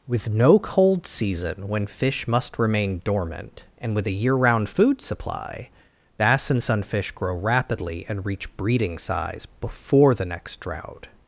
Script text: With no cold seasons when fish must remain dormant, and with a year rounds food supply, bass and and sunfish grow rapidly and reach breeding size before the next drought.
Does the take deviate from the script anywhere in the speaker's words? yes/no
yes